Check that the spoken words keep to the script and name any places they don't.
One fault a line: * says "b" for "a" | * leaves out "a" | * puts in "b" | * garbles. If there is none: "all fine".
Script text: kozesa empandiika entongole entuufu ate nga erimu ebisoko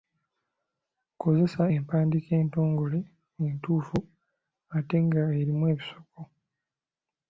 all fine